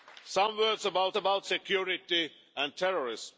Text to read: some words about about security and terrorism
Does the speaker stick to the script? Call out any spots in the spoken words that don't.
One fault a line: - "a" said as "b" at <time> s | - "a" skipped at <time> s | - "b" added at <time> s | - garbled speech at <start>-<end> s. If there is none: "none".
none